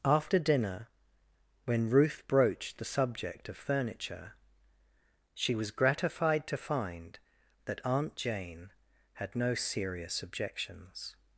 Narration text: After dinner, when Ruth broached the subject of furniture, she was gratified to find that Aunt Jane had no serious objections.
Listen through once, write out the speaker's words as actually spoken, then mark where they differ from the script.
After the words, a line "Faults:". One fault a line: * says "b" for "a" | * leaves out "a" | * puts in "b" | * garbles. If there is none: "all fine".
After dinner, when Ruth broached the subject of furniture, she was gratified to find that Aunt Jane had no serious objections.
Faults:
all fine